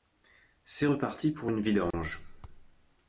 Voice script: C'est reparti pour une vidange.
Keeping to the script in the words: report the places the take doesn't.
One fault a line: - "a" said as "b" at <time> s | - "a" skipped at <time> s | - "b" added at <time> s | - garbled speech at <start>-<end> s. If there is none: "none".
none